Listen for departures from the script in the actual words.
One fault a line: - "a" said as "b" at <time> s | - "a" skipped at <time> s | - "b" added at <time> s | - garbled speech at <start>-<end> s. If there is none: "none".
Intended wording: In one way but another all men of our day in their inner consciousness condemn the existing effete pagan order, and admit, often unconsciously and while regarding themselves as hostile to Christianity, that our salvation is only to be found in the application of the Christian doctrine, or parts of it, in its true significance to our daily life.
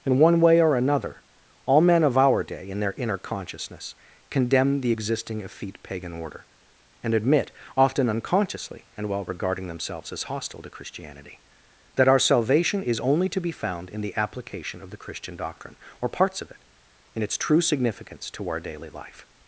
- "but" said as "or" at 0.6 s